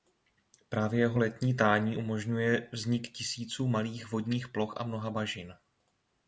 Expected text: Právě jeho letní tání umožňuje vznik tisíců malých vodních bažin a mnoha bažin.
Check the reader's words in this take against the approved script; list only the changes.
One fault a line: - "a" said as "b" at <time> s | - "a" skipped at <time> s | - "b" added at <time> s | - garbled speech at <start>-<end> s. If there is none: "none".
- "bažin" said as "ploch" at 4.5 s